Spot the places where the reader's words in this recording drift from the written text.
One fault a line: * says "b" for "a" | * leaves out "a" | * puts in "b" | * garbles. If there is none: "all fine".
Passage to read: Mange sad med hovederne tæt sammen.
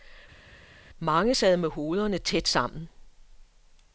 all fine